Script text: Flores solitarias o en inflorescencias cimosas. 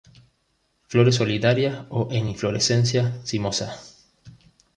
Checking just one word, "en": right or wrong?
right